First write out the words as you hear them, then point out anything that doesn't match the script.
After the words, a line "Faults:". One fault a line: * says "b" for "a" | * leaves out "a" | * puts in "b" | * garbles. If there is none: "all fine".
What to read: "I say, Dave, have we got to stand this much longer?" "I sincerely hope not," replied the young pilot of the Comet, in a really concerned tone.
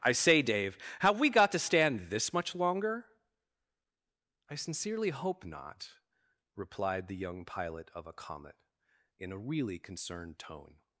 "I say, Dave, have we got to stand this much longer?" "I sincerely hope not," replied the young pilot of a Comet, in a really concerned tone.
Faults:
* says "a" for "the"